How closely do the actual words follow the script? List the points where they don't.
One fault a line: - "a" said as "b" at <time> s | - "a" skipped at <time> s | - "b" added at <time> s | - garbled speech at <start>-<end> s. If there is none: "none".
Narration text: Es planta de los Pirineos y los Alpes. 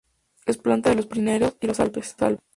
none